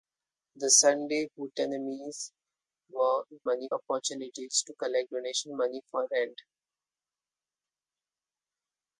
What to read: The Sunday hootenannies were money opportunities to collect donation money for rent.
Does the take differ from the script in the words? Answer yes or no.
no